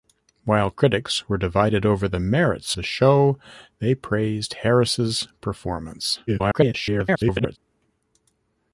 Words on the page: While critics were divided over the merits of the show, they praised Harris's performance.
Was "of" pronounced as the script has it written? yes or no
no